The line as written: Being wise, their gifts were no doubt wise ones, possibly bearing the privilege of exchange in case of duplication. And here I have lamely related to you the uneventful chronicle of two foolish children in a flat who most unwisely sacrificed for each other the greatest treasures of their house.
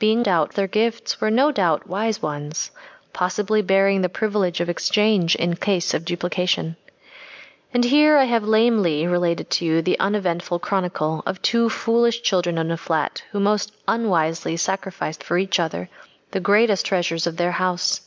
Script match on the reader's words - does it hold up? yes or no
no